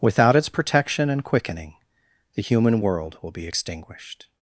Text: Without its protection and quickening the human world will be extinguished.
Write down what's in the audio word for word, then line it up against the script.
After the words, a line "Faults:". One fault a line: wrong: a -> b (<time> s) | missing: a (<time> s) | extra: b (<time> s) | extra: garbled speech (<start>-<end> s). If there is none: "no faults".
Without its protection and quickening the human world will be extinguished.
Faults:
no faults